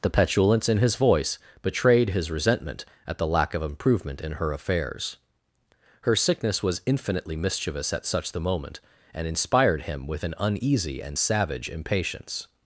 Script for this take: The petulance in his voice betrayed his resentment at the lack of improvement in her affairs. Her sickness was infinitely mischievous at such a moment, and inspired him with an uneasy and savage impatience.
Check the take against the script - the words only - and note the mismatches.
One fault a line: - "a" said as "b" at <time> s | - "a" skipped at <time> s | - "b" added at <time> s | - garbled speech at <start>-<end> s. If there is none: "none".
- "a" said as "the" at 8.3 s